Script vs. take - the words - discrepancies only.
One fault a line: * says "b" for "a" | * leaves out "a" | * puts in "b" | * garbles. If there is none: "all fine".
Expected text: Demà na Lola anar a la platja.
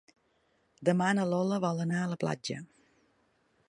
* puts in "vol"